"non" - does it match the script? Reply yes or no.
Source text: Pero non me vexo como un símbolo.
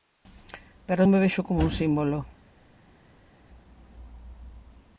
no